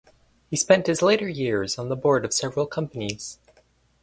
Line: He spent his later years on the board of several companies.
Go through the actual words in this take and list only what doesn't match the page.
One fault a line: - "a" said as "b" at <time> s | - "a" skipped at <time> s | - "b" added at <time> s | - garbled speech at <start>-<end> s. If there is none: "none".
none